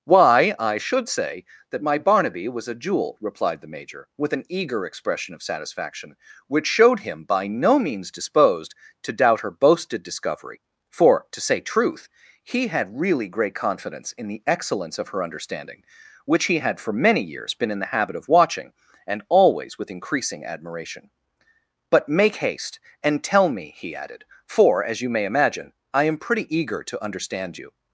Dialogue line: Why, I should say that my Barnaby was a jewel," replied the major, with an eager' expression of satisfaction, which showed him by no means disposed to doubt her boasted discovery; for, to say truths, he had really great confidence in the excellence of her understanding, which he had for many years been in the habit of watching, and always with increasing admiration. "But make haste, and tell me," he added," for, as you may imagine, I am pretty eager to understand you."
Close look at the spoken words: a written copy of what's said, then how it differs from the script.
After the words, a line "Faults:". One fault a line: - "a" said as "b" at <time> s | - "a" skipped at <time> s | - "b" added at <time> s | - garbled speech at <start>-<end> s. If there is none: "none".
Why, I should say that my Barnaby was a jewel," replied the major, with an eager' expression of satisfaction, which showed him by no means disposed to doubt her boasted discovery; for, to say truth, he had really great confidence in the excellence of her understanding, which he had for many years been in the habit of watching, and always with increasing admiration. "But make haste, and tell me," he added," for, as you may imagine, I am pretty eager to understand you."
Faults:
- "truths" said as "truth" at 11.6 s